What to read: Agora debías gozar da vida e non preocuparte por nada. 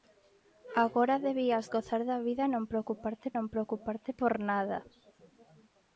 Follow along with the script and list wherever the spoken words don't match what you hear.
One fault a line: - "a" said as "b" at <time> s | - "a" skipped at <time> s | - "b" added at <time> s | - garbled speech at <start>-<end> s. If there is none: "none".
- "non preocuparte" added at 3.4 s